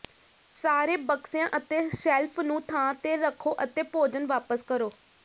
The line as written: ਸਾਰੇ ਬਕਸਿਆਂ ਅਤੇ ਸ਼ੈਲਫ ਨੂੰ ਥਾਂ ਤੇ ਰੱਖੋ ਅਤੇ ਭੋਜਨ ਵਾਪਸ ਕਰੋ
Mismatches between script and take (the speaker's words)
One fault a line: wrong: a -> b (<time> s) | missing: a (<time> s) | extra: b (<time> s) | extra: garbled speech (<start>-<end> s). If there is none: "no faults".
no faults